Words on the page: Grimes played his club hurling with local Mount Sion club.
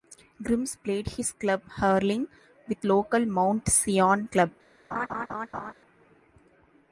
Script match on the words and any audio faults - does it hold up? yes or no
no